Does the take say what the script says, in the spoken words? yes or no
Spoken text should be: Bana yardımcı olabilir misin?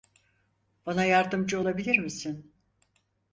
yes